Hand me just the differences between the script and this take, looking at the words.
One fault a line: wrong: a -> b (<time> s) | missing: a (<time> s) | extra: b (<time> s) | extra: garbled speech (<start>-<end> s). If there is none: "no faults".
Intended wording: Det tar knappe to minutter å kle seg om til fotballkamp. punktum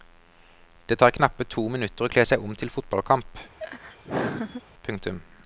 no faults